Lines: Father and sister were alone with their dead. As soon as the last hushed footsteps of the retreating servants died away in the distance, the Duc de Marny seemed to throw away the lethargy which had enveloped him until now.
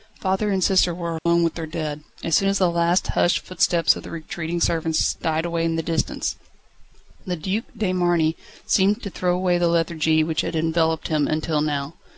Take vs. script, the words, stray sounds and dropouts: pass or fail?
fail